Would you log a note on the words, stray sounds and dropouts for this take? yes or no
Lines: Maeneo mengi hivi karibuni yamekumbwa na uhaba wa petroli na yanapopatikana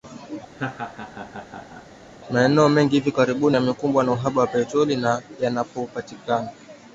yes